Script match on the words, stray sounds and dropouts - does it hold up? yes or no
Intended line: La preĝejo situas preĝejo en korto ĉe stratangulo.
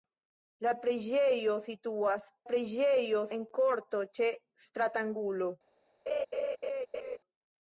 no